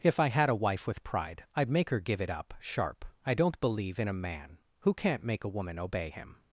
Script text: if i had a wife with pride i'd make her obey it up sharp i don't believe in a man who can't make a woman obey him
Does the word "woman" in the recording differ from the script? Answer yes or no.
no